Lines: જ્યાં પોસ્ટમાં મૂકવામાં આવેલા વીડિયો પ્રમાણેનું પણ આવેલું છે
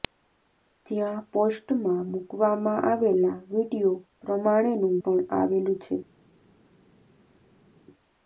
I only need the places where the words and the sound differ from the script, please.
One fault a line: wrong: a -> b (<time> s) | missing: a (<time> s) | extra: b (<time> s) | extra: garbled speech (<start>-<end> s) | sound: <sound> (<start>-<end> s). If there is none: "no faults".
no faults